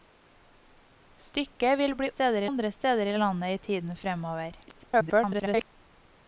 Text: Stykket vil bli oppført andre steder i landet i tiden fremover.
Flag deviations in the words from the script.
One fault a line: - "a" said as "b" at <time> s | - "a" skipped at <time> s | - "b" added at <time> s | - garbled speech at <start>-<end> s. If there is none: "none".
- "oppført" said as "steder" at 2.1 s
- garbled speech at 4.7-5.7 s